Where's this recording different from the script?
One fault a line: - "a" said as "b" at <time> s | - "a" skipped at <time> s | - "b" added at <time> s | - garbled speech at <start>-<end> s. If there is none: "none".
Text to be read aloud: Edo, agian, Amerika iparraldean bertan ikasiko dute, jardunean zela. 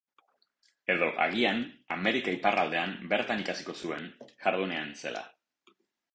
- "dute" said as "zuen" at 3.9 s